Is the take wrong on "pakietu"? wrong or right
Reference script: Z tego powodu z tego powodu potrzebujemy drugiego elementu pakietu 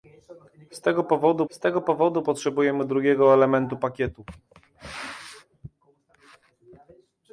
right